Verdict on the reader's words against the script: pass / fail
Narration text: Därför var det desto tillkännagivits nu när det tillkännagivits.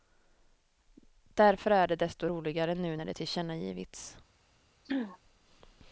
fail